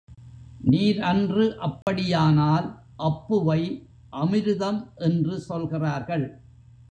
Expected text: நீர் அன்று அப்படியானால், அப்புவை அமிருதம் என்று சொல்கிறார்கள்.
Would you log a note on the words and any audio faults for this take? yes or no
yes